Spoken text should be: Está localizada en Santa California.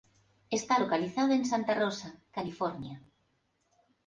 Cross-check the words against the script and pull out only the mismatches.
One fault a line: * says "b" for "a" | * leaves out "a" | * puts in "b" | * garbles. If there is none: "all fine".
* puts in "Rosa"